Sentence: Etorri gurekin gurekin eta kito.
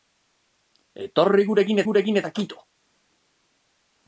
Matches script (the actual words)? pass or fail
pass